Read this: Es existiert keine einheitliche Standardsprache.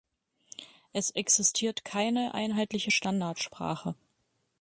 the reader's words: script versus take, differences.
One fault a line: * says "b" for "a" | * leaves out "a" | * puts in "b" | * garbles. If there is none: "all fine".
all fine